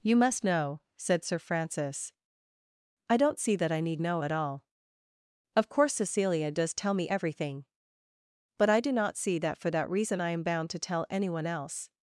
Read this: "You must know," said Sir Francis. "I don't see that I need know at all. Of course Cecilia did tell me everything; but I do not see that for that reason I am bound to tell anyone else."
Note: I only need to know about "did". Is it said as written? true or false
false